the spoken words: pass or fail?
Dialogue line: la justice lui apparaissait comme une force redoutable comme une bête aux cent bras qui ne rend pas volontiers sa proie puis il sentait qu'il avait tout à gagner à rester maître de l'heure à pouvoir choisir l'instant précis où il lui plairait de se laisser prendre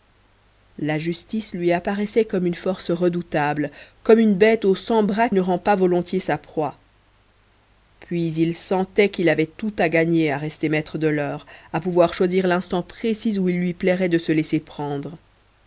fail